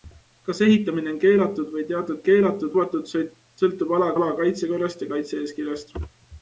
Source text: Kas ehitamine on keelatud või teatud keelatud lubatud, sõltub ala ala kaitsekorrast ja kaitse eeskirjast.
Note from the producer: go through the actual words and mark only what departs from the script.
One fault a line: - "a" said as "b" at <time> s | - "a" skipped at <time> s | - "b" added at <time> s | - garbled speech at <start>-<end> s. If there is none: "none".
none